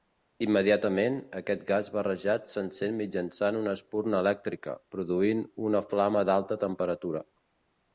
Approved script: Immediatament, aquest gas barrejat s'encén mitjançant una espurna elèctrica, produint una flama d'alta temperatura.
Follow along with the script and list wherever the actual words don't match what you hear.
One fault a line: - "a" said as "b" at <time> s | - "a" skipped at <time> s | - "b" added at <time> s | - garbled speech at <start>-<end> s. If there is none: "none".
none